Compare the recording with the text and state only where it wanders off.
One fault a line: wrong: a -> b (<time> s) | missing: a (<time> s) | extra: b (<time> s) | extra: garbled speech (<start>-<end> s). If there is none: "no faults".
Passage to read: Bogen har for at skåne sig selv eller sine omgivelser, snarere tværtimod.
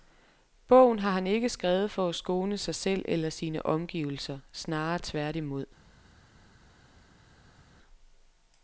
extra: han ikke skrevet (1.1 s)